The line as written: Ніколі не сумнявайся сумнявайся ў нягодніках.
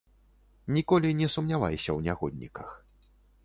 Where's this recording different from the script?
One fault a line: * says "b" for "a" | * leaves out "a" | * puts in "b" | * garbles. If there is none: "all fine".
* leaves out "сумнявайся"